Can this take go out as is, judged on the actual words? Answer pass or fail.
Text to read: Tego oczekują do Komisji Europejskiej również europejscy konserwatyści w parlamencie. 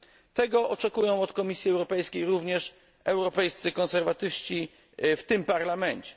fail